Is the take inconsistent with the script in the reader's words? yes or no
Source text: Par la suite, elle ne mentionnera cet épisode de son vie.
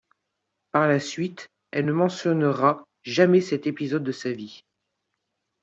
yes